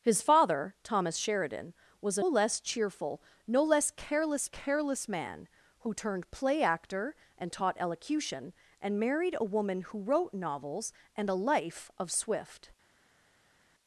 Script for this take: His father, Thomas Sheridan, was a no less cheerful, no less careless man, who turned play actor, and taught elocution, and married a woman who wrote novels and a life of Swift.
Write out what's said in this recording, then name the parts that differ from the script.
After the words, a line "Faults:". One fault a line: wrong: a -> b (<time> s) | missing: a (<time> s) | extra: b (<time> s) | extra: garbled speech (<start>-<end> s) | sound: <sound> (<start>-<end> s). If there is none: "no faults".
His father, Thomas Sheridan, was a less cheerful, no less careless careless man, who turned play actor, and taught elocution, and married a woman who wrote novels and a life of Swift.
Faults:
missing: no (2.2 s)
extra: careless (4.5 s)